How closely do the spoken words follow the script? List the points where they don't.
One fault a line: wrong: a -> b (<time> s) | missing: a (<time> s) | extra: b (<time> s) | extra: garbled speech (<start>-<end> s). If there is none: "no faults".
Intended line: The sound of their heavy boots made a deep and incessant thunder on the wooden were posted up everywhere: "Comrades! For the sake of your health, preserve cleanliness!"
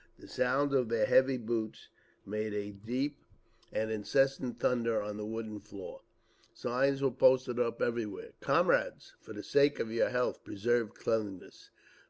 extra: floor Signs (5.6 s)